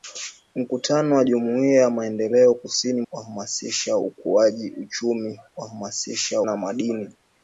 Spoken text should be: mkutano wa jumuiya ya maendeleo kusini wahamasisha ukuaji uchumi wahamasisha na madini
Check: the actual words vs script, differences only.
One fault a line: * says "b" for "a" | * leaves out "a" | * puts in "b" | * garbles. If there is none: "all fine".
all fine